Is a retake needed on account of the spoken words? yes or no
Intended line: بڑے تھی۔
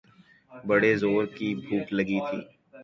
yes